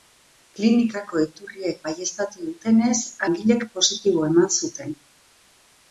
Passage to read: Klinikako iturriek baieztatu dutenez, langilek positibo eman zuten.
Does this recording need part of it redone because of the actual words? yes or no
no